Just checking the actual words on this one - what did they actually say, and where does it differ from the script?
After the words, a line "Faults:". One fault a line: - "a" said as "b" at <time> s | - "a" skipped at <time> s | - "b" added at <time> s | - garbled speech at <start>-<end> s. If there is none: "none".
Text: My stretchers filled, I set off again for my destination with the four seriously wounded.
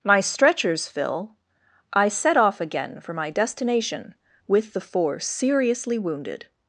My stretchers fill, I set off again for my destination with the four seriously wounded.
Faults:
- "filled" said as "fill" at 0.9 s